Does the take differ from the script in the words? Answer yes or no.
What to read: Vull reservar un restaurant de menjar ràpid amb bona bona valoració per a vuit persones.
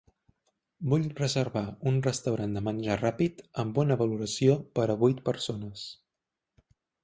yes